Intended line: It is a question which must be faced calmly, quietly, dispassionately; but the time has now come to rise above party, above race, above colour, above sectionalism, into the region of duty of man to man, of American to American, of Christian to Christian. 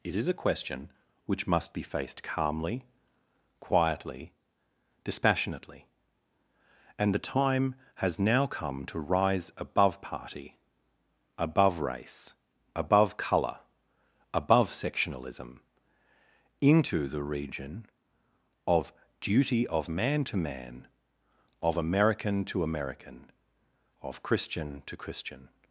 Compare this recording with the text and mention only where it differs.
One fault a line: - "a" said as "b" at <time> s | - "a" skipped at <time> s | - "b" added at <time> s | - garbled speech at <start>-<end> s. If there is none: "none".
- "but" said as "and" at 7.0 s